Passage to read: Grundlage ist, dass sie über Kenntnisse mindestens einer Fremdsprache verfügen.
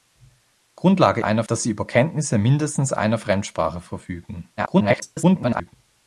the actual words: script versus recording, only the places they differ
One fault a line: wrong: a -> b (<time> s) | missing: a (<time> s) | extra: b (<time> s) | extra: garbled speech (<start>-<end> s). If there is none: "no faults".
wrong: ist -> einer (1.2 s)
extra: garbled speech (4.6-5.7 s)